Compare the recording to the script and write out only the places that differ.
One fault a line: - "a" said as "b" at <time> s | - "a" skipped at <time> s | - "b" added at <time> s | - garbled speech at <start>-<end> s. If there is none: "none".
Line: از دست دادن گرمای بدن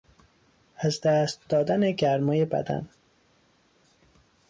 none